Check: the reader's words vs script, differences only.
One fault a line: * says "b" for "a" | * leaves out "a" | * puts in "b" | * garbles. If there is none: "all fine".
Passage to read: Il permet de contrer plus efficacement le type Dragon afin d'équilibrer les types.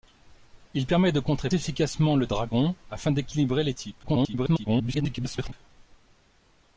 * leaves out "plus"
* leaves out "type"
* garbles